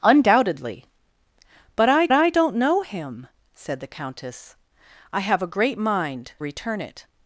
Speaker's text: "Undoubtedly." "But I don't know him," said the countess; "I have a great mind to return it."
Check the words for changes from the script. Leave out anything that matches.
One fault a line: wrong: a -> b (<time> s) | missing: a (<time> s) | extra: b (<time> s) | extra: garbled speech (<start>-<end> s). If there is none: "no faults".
extra: I (2.1 s)
missing: to (6.3 s)